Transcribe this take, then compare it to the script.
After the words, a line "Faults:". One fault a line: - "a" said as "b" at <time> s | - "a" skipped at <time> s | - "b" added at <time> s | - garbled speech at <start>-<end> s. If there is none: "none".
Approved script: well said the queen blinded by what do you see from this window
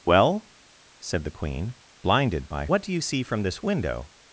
well said the queen blinded by what do you see from this window
Faults:
none